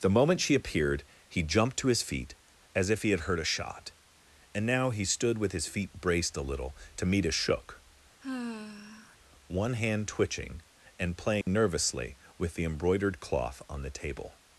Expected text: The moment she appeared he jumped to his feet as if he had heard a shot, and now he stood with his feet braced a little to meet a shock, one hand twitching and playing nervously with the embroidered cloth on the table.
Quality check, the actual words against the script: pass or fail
fail